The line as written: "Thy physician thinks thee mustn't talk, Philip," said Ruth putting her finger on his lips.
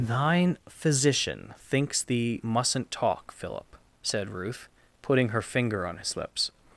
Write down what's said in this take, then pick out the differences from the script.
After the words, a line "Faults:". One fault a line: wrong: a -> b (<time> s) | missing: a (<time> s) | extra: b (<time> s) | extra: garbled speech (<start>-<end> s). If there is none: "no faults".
"Thine physician thinks thee mustn't talk, Philip," said Ruth putting her finger on his lips.
Faults:
wrong: Thy -> Thine (0.1 s)